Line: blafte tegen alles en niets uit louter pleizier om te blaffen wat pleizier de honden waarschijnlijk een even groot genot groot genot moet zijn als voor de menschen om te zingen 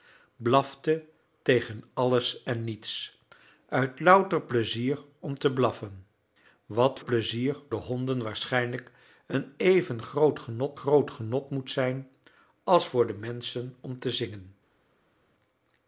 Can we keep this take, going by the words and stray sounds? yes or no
yes